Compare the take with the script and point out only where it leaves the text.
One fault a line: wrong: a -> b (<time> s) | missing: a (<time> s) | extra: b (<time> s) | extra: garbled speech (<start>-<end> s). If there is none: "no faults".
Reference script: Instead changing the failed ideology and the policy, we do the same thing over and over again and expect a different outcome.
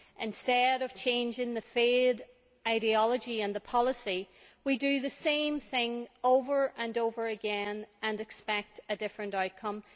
extra: of (0.8 s)